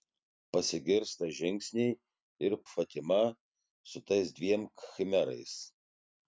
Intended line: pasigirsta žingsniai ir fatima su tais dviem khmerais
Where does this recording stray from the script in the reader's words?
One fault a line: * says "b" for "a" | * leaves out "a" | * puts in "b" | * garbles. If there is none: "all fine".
all fine